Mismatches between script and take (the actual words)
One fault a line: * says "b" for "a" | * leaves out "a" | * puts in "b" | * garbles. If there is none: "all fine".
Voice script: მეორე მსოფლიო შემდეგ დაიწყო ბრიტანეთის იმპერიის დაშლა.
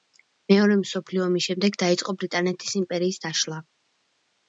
* puts in "ომის"